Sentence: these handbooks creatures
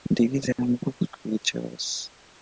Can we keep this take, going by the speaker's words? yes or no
yes